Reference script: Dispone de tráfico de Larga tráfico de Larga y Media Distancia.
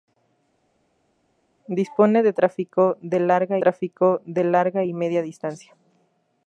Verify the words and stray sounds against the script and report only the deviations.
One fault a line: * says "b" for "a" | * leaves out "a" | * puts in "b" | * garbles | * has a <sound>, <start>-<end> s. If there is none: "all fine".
all fine